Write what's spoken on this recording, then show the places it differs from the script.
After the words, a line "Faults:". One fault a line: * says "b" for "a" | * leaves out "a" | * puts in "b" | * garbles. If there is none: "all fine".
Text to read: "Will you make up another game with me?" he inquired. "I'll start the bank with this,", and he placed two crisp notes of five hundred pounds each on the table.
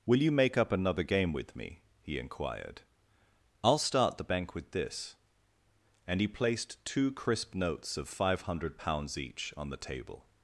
"Will you make up another game with me?" he inquired. "I'll start the bank with this,", and he placed two crisp notes of five hundred pounds each on the table.
Faults:
all fine